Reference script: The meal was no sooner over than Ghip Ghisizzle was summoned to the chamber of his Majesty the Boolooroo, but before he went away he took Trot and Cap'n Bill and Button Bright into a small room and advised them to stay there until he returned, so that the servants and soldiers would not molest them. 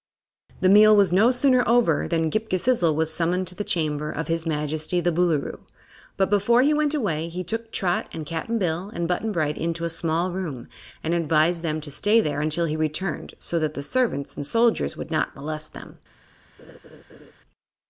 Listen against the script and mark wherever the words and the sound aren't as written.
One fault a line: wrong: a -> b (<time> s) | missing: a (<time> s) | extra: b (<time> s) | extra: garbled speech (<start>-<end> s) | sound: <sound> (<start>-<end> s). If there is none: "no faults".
sound: laugh (16.6-17.3 s)